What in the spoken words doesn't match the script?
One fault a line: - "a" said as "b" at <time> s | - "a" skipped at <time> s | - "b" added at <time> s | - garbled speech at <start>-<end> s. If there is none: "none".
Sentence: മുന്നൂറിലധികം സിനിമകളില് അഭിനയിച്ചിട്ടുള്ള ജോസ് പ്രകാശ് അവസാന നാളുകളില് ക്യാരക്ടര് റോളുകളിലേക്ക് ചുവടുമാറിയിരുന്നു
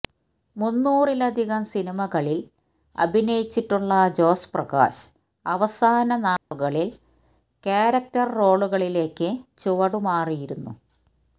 none